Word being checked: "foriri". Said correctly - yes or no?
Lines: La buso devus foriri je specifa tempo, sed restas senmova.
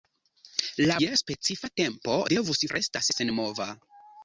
no